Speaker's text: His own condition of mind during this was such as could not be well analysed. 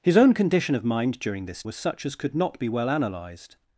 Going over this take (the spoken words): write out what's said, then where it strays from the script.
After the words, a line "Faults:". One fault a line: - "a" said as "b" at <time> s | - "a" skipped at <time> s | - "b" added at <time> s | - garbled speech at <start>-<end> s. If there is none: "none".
His own condition of mind during this was such as could not be well analysed.
Faults:
none